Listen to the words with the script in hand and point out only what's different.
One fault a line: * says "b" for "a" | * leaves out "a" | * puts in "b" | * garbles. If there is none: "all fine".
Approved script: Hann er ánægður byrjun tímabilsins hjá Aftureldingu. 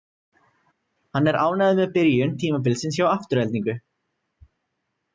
* puts in "með"